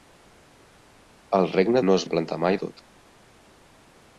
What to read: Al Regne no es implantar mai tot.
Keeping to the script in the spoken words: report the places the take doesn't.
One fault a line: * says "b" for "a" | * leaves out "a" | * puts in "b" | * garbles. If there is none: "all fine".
all fine